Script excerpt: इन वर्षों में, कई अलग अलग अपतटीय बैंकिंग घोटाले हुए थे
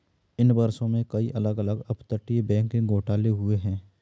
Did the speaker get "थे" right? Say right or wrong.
wrong